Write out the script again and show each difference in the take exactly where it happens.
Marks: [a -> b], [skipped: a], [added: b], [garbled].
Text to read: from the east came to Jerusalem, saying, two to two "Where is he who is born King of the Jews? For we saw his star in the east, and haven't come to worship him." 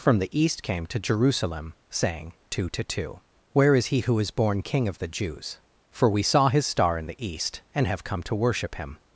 from the east came to Jerusalem, saying, two to two "Where is he who is born King of the Jews? For we saw his star in the east, and [haven't -> have] come to worship him."